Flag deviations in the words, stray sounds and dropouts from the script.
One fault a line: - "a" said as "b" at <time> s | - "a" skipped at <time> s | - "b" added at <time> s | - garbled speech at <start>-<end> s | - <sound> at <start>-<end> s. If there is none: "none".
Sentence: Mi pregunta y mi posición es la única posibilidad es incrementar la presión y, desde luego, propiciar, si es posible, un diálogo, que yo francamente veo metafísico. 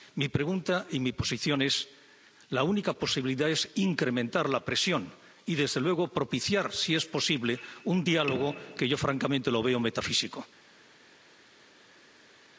none